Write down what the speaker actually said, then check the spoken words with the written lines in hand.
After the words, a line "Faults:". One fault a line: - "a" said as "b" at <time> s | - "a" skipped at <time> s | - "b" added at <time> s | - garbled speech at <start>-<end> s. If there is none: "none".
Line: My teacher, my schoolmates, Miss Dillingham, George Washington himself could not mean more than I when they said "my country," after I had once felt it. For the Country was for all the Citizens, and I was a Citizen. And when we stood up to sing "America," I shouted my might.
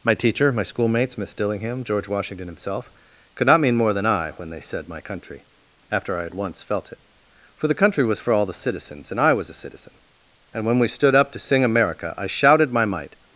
My teacher, my schoolmates, Miss Dillingham, George Washington himself could not mean more than I when they said "my country," after I had once felt it. For the Country was for all the Citizens, and I was a Citizen. And when we stood up to sing "America," I shouted my might.
Faults:
none